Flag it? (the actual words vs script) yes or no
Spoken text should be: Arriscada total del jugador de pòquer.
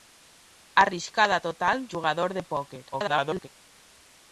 yes